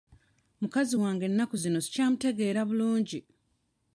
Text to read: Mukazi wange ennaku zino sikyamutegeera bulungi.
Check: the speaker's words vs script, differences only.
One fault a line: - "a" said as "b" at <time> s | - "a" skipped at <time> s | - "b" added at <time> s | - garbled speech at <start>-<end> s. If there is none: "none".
none